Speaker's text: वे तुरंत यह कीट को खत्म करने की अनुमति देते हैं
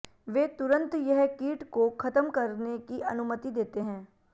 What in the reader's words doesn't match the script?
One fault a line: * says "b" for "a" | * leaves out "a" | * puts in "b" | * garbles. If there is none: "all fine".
all fine